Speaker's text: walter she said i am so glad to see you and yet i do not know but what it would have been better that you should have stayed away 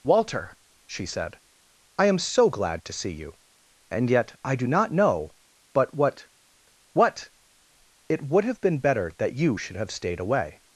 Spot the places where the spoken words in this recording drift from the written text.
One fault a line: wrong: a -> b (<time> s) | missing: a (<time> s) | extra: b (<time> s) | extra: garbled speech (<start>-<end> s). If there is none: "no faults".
extra: what (6.9 s)